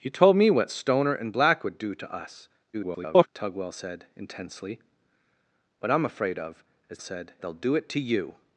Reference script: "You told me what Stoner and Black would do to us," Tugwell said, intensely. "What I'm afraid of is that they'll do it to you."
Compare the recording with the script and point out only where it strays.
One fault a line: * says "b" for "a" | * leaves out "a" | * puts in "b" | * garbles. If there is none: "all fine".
* garbles
* says "said" for "that"